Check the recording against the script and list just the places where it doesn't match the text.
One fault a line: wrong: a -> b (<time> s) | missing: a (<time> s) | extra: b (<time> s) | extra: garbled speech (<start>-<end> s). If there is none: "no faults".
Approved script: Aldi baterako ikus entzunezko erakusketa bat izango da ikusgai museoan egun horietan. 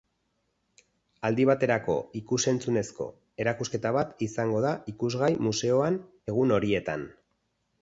no faults